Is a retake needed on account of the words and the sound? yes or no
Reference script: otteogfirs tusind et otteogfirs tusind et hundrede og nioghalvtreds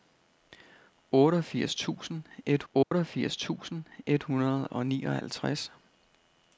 yes